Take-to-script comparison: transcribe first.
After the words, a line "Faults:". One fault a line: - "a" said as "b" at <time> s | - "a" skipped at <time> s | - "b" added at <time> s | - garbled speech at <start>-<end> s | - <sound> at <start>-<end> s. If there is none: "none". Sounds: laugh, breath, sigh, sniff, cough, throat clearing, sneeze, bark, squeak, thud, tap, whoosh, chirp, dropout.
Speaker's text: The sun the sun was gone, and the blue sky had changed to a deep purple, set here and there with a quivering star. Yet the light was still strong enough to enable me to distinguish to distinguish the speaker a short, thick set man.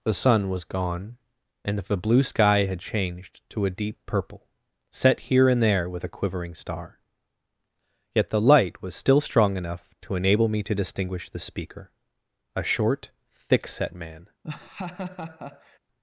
The sun was gone, and the blue sky had changed to a deep purple, set here and there with a quivering star. Yet the light was still strong enough to enable me to distinguish the speaker a short, thick set man.
Faults:
- "the sun" skipped at 0.5 s
- "to distinguish" skipped at 11.3 s
- laugh at 14.4-15.8 s